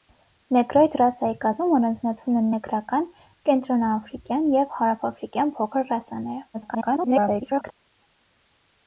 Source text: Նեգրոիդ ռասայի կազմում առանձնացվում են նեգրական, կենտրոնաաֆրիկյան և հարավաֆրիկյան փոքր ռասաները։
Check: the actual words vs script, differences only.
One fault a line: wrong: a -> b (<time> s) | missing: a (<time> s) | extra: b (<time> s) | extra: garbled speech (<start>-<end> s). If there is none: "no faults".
extra: garbled speech (6.5-7.7 s)